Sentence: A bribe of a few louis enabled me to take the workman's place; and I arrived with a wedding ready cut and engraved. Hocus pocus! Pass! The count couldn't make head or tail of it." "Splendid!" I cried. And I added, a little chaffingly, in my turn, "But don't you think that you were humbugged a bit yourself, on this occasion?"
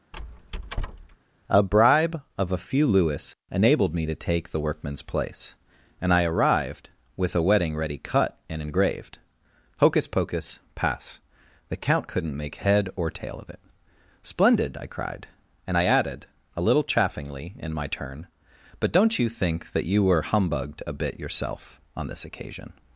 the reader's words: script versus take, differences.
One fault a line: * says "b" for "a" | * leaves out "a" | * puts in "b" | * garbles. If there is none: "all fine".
all fine